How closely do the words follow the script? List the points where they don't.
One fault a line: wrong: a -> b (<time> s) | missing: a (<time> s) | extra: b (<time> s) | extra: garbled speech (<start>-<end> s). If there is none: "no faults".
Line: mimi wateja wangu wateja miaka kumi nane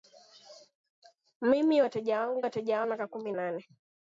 no faults